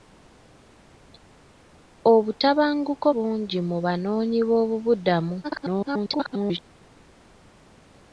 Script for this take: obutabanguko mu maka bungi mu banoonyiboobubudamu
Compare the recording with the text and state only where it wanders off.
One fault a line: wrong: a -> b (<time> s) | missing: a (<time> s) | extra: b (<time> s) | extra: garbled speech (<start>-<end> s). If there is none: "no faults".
missing: mu maka (3.1 s)
extra: garbled speech (5.4-6.6 s)